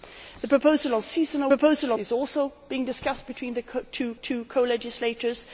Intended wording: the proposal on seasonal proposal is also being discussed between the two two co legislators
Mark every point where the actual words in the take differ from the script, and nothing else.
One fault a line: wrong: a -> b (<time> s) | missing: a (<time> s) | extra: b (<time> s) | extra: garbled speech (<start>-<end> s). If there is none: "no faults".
no faults